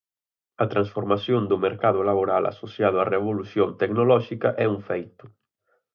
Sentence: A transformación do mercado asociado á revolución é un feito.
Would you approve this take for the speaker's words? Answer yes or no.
no